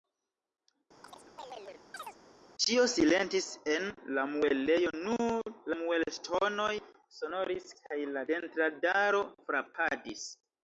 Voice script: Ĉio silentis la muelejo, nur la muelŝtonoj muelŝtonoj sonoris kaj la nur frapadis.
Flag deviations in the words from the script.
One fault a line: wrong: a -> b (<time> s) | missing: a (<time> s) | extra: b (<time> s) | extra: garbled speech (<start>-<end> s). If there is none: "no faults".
extra: en (3.7 s)
missing: muelŝtonoj (6.7 s)
wrong: nur -> dentradaro (8.3 s)